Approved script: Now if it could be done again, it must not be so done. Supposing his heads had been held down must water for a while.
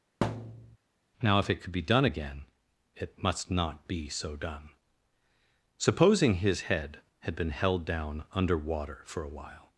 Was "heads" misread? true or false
true